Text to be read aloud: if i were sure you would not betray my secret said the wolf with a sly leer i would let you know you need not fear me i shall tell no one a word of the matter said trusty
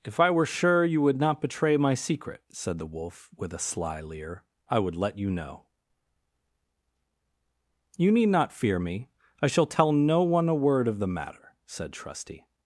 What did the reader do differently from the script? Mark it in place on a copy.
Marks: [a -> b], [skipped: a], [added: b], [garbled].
if i were sure you would not betray my secret said the wolf with a sly leer i would let you know you need not fear me i shall tell no one a word of the matter said trusty